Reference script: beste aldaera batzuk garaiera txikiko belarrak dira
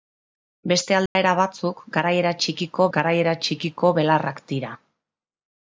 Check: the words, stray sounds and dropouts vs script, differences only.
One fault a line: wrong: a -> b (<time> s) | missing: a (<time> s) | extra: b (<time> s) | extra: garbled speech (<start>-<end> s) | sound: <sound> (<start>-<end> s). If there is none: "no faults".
sound: dropout (1.1-1.2 s)
extra: garaiera txikiko (3.0 s)